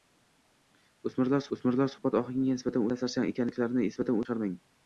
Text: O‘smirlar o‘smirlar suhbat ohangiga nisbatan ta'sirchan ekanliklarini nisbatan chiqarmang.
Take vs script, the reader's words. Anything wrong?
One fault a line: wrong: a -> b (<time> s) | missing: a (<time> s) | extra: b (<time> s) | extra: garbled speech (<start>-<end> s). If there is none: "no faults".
no faults